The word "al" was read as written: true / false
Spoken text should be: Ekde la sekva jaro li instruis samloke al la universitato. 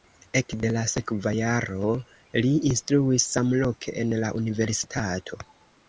false